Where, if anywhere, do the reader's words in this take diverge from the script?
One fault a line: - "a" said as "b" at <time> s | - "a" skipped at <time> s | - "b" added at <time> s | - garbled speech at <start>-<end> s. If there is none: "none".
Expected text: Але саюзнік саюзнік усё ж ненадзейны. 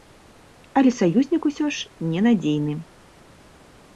- "саюзнік" skipped at 1.4 s